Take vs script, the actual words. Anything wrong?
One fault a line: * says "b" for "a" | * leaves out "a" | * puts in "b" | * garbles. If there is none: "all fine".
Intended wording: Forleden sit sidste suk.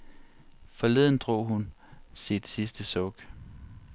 * puts in "drog hun"